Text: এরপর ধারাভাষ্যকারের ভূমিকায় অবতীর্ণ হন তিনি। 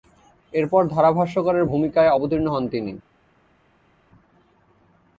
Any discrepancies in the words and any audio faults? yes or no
no